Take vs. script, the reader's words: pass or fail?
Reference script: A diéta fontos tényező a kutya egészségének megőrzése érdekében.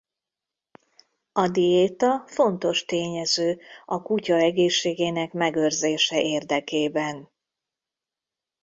pass